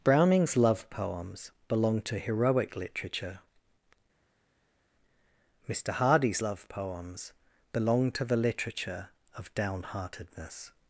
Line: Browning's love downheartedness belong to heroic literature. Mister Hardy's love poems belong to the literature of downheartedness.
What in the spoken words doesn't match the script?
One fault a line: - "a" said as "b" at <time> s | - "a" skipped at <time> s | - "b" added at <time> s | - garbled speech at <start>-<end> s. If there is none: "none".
- "downheartedness" said as "poems" at 0.9 s